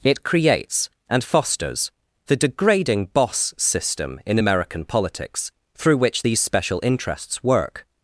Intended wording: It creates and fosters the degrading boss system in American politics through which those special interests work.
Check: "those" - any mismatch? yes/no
yes